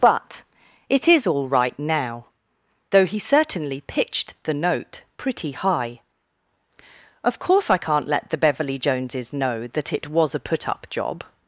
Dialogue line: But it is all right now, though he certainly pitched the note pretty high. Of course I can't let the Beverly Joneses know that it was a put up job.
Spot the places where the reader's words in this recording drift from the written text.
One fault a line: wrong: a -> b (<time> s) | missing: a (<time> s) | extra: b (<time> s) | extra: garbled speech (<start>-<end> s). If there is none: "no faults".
no faults